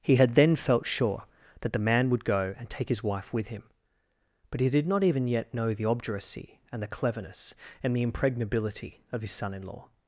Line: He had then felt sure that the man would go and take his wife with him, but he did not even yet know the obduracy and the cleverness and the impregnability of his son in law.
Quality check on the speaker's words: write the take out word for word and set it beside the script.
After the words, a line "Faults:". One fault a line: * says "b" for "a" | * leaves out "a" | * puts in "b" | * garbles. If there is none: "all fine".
He had then felt sure that the man would go and take his wife with him, but he did not even yet know the obduracy and the cleverness and the impregnability of his son in law.
Faults:
all fine